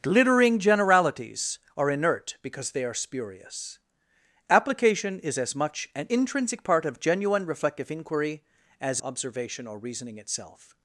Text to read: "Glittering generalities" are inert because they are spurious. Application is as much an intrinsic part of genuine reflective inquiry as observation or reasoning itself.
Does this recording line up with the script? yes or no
yes